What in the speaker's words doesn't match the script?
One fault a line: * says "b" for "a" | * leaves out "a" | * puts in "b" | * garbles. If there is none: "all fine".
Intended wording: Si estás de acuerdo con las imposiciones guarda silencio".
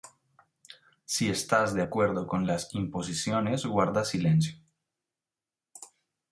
all fine